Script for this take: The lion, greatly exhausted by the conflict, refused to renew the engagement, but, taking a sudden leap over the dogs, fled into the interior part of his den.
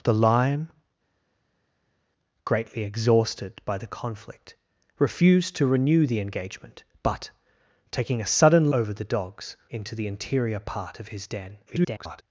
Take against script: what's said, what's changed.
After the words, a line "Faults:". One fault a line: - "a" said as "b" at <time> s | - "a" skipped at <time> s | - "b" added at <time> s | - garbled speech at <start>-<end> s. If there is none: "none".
The lion, greatly exhausted by the conflict, refused to renew the engagement, but, taking a sudden over the dogs, into the interior part of his den. [garbled]
Faults:
- "leap" skipped at 8.7 s
- "fled" skipped at 9.6 s
- garbled speech at 11.7-12.2 s